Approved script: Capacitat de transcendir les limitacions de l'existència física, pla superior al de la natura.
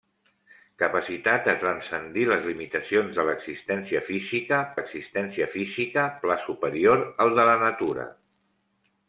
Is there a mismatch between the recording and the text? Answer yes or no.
yes